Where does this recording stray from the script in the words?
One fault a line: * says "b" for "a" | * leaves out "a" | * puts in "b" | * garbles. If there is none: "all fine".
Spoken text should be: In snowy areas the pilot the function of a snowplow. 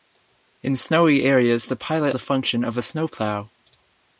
all fine